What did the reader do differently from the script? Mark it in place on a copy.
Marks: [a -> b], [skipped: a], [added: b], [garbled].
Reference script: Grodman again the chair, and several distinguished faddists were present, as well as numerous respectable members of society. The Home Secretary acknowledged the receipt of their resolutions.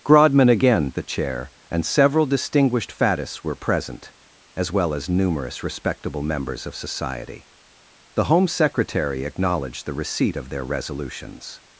Grodman again the chair, and several distinguished faddists were present, as well as numerous respectable members of society. The Home Secretary acknowledged the receipt of their resolutions.